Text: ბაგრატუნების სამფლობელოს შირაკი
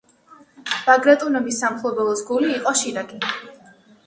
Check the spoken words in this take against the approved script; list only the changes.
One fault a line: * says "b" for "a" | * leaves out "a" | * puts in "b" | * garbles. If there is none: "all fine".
* puts in "გული იყო"